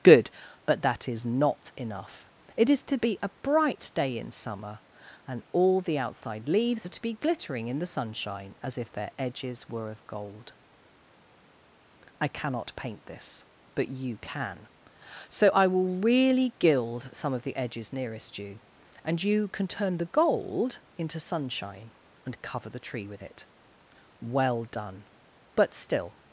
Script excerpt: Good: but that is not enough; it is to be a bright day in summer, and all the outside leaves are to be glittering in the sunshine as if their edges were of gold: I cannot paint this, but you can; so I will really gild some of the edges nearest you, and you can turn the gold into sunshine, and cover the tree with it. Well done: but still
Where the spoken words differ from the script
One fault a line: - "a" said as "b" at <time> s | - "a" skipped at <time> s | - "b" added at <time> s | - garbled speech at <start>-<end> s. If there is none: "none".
none